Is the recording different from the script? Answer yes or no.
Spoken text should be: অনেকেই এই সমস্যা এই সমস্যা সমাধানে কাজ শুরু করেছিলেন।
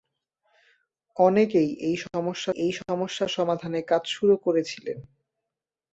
no